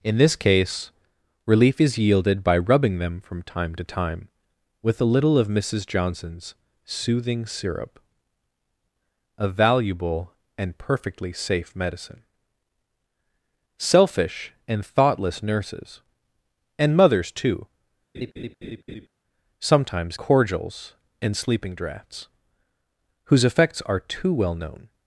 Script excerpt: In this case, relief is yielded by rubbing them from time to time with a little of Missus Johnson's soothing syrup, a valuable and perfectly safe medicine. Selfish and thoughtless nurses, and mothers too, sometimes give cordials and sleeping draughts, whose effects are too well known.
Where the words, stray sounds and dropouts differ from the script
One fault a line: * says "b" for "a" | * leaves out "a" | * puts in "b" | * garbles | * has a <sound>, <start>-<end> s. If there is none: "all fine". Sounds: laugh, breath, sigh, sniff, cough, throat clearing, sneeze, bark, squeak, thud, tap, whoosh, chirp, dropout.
* has a laugh, 18.1-19.1 s
* leaves out "give"